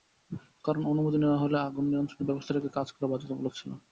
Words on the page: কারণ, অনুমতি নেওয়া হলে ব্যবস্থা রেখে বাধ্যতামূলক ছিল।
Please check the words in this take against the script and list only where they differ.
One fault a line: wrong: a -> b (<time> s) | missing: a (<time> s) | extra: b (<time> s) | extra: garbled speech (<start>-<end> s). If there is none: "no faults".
extra: আগুন নিয়ন্ত্রণের (1.6 s)
extra: কাজ করা (2.8 s)